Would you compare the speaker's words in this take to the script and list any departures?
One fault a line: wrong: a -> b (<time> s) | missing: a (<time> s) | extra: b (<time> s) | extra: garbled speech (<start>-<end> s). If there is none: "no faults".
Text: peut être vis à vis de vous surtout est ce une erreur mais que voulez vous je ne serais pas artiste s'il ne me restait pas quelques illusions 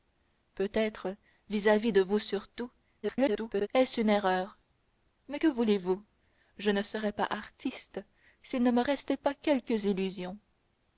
extra: garbled speech (3.0-3.7 s)